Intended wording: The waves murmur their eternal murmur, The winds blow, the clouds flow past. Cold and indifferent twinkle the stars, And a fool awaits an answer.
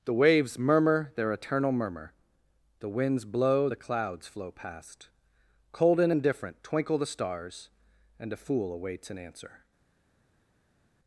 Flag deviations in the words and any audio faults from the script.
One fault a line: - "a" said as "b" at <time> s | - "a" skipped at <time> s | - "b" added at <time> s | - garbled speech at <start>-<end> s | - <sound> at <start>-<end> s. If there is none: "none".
none